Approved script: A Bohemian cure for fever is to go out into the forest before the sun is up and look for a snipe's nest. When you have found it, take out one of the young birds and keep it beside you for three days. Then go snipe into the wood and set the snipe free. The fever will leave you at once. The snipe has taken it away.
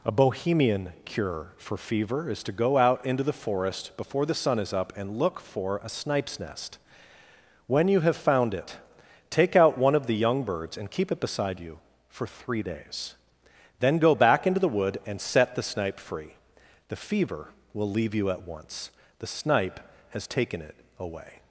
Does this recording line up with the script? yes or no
no